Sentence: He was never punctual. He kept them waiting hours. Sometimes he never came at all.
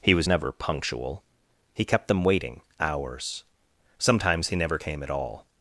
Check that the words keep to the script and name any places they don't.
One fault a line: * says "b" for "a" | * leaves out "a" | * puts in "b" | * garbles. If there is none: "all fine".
all fine